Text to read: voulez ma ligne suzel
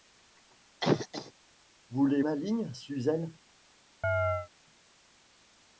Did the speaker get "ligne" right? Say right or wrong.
right